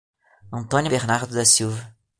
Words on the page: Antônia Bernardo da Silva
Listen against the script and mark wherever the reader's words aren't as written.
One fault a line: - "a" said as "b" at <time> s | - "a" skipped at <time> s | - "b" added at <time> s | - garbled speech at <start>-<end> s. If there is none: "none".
none